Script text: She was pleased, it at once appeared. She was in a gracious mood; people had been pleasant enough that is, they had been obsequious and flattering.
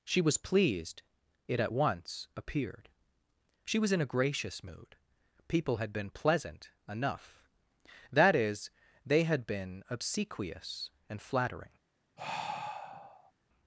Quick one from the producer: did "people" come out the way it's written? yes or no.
yes